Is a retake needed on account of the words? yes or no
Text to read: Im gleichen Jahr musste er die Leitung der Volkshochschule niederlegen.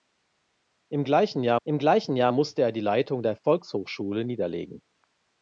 yes